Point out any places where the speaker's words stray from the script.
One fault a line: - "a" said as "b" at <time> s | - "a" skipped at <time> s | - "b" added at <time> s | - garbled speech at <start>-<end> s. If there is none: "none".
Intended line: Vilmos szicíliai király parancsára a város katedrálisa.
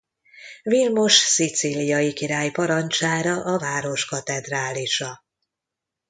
none